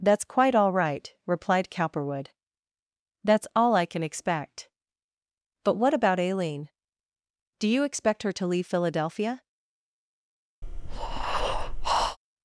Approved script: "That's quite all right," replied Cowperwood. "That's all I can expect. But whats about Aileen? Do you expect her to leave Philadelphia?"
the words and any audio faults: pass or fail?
fail